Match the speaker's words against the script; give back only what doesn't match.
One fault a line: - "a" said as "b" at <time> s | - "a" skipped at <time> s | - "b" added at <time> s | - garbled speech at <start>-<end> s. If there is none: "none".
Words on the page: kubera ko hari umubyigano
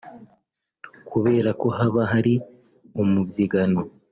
- "haba" added at 1.8 s